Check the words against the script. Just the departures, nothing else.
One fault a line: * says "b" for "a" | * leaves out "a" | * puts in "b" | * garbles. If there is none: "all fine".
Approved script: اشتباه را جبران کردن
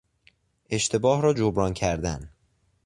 all fine